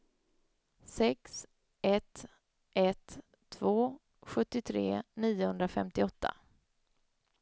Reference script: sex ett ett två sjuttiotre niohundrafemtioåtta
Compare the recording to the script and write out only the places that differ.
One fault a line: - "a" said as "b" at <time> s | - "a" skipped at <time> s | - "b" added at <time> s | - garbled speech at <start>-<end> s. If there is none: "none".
none